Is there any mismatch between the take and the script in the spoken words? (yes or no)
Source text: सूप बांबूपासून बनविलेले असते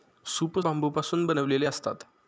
no